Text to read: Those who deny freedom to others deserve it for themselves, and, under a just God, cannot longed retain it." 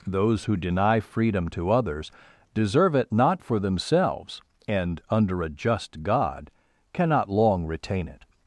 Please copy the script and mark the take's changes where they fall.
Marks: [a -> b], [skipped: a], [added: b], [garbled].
Those who deny freedom to others deserve it [added: not] for themselves, and, under a just God, cannot [longed -> long] retain it."